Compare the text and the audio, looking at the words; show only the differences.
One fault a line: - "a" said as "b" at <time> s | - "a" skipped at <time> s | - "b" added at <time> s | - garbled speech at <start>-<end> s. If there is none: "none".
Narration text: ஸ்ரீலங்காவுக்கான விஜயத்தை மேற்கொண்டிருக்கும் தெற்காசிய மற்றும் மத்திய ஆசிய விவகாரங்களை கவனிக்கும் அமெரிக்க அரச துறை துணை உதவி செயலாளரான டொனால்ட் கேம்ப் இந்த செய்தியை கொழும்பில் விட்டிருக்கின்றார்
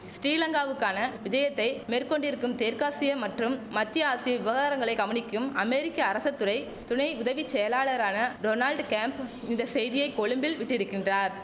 none